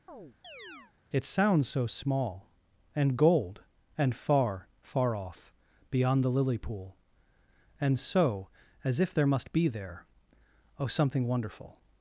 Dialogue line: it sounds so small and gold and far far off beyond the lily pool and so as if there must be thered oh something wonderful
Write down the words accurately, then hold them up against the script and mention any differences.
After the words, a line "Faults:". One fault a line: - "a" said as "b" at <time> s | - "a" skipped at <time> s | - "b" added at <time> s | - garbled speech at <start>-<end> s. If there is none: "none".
it sounds so small and gold and far far off beyond the lily pool and so as if there must be there oh something wonderful
Faults:
- "thered" said as "there" at 9.7 s